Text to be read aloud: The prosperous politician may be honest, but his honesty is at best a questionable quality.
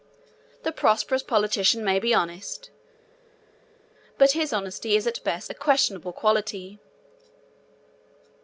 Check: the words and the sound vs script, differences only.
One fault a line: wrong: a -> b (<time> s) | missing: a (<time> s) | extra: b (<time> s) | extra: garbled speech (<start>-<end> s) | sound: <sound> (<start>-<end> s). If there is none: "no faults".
no faults